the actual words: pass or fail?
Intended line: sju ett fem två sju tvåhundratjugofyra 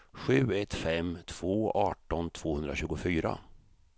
fail